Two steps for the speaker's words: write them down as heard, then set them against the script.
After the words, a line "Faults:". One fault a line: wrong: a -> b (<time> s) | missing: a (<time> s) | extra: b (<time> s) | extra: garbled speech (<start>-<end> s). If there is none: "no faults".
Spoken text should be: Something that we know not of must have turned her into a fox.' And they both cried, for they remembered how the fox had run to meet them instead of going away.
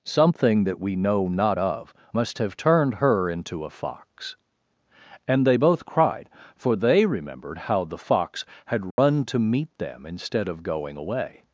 Something that we know not of must have turned her into a fox.' And they both cried, for they remembered how the fox had run to meet them instead of going away.
Faults:
no faults